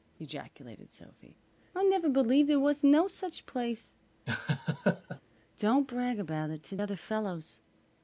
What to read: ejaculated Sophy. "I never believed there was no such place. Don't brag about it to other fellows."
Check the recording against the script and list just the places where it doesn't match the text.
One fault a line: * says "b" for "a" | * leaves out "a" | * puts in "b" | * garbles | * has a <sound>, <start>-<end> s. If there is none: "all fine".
* has a laugh, 4.3-5.2 s